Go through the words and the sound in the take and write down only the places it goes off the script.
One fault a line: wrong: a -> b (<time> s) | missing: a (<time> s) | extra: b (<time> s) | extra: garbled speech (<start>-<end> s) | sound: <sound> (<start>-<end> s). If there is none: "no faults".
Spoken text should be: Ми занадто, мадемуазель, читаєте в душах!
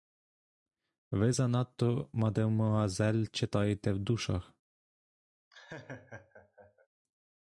wrong: Ми -> Ви (1.1 s)
sound: laugh (5.5-6.9 s)